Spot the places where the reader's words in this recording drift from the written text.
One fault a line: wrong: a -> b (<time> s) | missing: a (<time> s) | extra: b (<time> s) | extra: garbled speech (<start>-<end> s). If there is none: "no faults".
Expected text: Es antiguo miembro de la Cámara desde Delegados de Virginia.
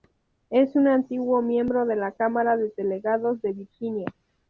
extra: un (0.8 s)
wrong: desde -> de (2.6 s)